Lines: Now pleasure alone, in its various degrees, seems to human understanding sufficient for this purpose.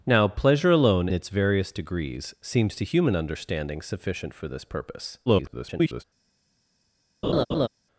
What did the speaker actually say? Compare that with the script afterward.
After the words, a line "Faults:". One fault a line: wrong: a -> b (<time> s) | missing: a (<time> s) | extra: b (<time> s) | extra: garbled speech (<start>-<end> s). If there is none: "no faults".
Now pleasure alone, its various degrees, seems to human understanding sufficient for this purpose. [garbled]
Faults:
missing: in (1.1 s)
extra: garbled speech (5.3-6.0 s)